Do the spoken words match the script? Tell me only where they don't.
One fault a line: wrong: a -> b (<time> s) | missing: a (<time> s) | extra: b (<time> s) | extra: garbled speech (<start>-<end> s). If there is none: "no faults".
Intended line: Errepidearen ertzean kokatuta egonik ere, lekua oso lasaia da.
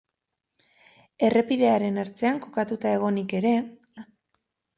missing: lekua oso lasaia (3.5 s)